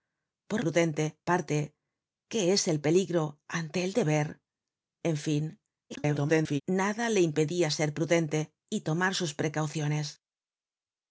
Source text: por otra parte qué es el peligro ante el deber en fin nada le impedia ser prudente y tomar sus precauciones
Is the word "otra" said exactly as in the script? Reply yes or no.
no